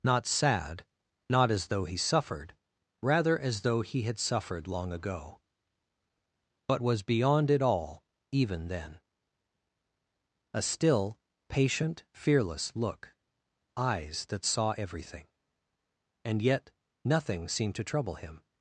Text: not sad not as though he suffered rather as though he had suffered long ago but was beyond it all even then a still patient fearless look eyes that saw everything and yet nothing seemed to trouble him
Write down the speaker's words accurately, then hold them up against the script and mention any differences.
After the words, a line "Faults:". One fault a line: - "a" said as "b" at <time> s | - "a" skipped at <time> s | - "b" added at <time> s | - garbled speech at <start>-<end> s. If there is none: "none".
not sad not as though he suffered rather as though he had suffered long ago but was beyond it all even then a still patient fearless look eyes that saw everything and yet nothing seemed to trouble him
Faults:
none